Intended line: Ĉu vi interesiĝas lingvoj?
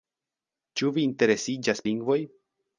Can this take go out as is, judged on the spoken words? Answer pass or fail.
pass